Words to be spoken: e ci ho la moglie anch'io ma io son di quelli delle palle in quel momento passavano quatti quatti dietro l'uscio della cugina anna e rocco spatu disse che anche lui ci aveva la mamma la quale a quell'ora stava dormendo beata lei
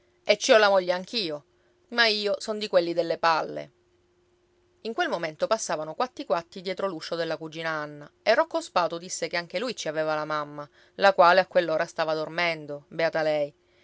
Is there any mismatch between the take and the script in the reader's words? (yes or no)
no